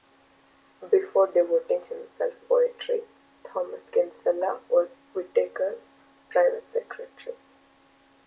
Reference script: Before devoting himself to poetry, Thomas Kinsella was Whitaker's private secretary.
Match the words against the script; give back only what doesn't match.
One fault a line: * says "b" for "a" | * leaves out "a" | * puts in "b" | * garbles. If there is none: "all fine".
* leaves out "to"